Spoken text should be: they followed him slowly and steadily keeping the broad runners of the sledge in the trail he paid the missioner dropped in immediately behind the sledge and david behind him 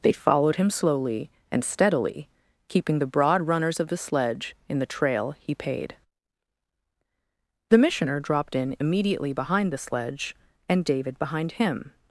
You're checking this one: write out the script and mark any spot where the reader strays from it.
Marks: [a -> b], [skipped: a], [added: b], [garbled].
they followed him slowly and steadily keeping the broad runners of the sledge in the trail he paid the missioner dropped in immediately behind the sledge and david behind him